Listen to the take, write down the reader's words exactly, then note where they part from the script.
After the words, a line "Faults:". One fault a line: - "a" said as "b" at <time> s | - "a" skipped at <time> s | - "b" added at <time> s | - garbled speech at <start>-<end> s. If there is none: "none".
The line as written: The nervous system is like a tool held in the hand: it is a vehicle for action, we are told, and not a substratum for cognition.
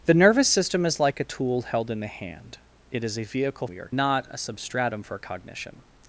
The nervous system is like a tool held in the hand: it is a vehicle we are not a substratum for cognition.
Faults:
- "for action" skipped at 3.7 s
- "told and" skipped at 3.9 s